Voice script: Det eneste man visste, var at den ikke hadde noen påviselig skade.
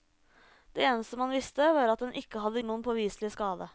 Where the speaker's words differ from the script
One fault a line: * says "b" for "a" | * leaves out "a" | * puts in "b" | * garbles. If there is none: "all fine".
all fine